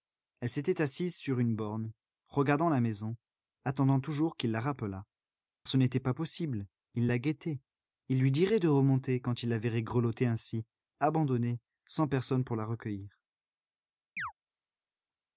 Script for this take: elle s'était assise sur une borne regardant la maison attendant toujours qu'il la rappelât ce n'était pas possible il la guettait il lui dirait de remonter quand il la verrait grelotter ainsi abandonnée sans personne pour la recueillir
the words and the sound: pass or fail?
fail